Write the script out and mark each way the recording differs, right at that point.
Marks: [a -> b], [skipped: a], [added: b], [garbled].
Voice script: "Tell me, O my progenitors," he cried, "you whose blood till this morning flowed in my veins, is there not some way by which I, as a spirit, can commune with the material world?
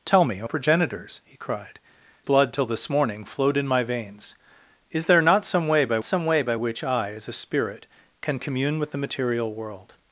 "Tell me, O [skipped: my] progenitors," he cried, [skipped: "you whose] blood till this morning flowed in my veins, is there not some way by [added: some way by] which I, as a spirit, can commune with the material world?